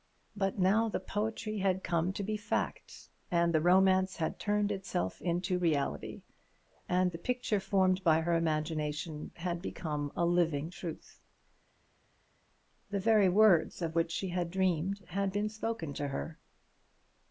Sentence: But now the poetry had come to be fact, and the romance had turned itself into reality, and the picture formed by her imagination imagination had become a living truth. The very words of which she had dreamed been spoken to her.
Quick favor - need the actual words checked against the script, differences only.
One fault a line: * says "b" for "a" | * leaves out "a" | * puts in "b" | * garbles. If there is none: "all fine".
* leaves out "imagination"
* puts in "had"